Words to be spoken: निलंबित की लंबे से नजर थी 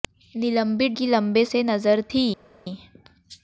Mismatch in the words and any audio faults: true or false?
false